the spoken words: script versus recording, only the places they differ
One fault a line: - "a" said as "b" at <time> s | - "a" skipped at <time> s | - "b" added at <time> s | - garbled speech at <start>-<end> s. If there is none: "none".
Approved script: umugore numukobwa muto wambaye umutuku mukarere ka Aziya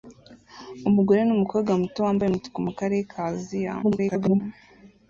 - garbled speech at 3.8-4.4 s